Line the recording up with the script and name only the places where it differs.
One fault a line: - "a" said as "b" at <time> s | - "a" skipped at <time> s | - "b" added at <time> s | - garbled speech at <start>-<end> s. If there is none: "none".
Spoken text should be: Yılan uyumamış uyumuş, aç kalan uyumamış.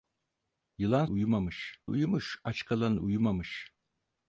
none